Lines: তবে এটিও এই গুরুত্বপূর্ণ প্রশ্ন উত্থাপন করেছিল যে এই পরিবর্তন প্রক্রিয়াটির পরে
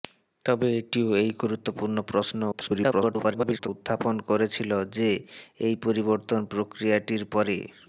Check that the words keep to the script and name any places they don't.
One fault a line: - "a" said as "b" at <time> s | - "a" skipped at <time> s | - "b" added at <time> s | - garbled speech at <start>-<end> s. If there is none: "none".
- garbled speech at 2.5-3.7 s